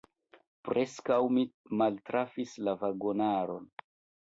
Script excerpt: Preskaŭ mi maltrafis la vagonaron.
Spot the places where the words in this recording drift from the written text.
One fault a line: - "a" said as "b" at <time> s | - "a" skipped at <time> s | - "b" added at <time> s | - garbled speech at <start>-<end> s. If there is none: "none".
none